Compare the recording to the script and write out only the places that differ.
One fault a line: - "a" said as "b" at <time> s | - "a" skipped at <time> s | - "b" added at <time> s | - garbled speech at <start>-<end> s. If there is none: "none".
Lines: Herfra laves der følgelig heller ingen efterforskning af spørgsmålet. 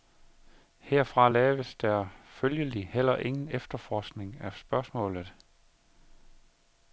none